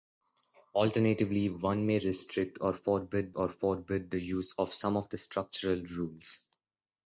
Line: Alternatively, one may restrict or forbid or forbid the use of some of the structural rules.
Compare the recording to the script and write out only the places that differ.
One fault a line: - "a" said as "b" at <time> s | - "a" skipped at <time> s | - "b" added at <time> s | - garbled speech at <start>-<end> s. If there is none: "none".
none